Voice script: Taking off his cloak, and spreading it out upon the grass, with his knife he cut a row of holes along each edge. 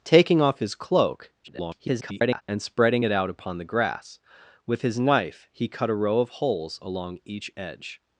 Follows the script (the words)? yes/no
no